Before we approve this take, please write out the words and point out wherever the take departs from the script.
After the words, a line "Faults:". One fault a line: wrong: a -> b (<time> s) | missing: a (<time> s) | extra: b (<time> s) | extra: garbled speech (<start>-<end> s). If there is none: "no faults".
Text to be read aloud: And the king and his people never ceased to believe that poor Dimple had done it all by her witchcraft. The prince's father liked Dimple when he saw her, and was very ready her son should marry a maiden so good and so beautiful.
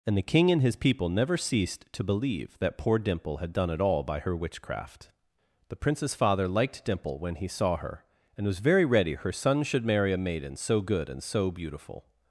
And the king and his people never ceased to believe that poor Dimple had done it all by her witchcraft. The prince's father liked Dimple when he saw her, and was very ready her son should marry a maiden so good and so beautiful.
Faults:
no faults